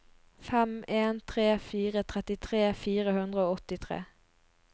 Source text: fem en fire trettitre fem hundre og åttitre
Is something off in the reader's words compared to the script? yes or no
yes